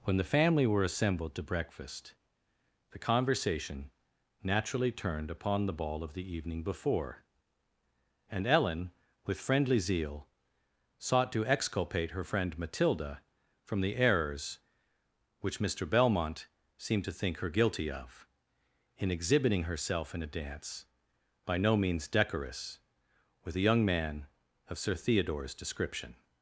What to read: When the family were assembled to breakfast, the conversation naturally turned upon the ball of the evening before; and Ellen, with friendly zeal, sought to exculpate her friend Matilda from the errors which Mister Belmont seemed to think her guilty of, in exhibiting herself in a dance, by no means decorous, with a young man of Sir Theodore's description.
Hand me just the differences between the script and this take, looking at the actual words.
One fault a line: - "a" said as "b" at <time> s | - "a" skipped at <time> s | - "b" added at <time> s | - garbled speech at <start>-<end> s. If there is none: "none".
none